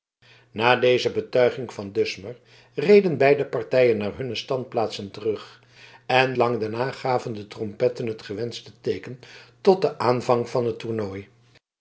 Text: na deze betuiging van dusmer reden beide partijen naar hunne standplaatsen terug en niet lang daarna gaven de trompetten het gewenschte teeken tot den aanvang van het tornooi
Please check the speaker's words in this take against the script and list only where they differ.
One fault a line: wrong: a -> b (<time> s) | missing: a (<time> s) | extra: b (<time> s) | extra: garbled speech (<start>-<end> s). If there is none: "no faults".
missing: niet (6.3 s)